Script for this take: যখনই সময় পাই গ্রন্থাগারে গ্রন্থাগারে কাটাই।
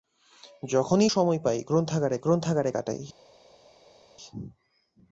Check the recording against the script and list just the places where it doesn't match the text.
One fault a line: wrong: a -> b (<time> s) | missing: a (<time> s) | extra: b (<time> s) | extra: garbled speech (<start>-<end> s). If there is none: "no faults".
no faults